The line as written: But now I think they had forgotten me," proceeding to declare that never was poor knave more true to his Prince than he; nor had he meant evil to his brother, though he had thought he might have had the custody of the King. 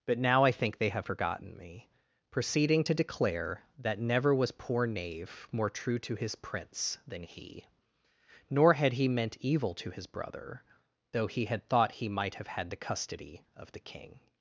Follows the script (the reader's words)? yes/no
no